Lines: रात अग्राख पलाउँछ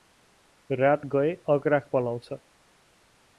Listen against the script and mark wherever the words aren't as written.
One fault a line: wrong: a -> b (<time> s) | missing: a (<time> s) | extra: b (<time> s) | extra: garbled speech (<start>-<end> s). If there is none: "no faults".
extra: गए (1.1 s)